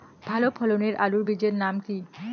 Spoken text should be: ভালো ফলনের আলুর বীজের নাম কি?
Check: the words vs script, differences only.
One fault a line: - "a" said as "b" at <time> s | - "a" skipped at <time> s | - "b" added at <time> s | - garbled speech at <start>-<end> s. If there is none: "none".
none